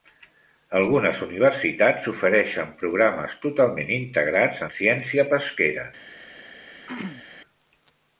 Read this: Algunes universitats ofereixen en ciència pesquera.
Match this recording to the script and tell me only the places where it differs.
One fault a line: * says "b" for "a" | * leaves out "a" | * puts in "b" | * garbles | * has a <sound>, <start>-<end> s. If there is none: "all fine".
* puts in "programes totalment integrats"
* has a throat clearing, 6.9-7.3 s